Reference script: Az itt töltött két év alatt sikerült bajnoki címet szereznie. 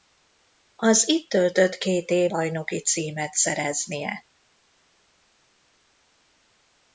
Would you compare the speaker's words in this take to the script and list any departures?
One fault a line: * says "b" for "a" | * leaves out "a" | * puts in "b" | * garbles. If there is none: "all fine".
* leaves out "alatt sikerült"